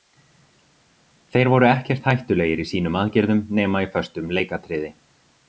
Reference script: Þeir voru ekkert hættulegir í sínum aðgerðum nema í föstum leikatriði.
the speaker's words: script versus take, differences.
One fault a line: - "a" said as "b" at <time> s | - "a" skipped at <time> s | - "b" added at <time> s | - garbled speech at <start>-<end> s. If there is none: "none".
none